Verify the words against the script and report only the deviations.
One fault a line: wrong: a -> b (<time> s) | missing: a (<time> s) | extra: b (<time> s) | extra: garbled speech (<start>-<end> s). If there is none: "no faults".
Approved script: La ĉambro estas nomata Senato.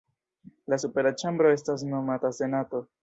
extra: supera (0.8 s)